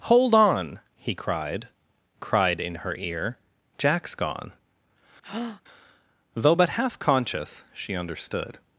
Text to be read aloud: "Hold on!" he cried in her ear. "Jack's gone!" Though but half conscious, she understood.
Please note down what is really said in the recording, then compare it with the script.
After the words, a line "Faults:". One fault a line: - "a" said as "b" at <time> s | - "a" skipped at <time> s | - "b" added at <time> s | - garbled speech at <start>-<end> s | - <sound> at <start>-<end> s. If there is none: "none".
"Hold on!" he cried cried in her ear. "Jack's gone!" Though but half conscious, she understood.
Faults:
- "cried" added at 2.2 s
- breath at 5.2-5.6 s